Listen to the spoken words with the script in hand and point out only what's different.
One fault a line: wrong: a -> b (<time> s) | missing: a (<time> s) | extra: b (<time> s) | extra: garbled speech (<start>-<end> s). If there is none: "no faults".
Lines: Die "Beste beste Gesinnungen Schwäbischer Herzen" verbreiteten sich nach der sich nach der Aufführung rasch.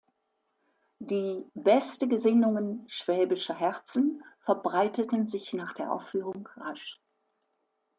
missing: beste (2.1 s)
missing: sich nach der (5.9 s)